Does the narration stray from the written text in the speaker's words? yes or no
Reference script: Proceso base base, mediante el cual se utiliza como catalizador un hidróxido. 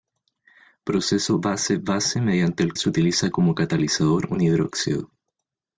yes